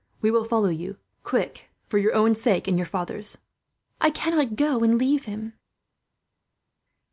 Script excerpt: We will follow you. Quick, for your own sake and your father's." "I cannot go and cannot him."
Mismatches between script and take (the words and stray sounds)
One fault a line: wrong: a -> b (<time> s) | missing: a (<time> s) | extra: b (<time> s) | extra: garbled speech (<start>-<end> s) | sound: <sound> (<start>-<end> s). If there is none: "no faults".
wrong: cannot -> leave (5.0 s)